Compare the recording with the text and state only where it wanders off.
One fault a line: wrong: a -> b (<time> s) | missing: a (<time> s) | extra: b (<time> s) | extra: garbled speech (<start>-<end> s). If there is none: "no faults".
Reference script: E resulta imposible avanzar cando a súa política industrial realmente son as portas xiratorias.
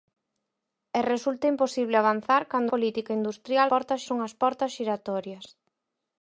missing: a súa (2.7 s)
wrong: realmente -> portas (3.7 s)